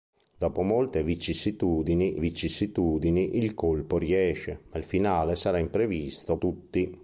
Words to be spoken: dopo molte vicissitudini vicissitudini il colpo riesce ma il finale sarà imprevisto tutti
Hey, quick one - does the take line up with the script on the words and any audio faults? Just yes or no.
yes